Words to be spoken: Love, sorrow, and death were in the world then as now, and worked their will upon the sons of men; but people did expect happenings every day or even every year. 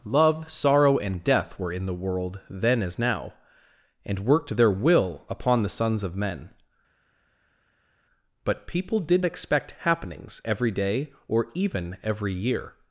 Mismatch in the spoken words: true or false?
false